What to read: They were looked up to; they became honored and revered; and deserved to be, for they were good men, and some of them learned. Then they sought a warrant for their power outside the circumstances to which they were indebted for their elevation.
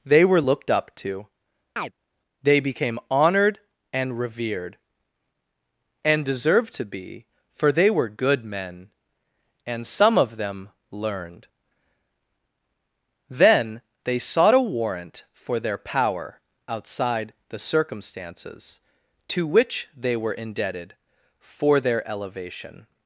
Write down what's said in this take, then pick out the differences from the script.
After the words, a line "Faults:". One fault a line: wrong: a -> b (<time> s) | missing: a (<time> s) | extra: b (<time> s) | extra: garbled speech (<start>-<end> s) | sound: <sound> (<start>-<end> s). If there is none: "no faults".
They were looked up to; they became honored and revered; and deserved to be, for they were good men, and some of them learned. Then they sought a warrant for their power outside the circumstances to which they were indebted for their elevation.
Faults:
sound: chirp (1.8-1.9 s)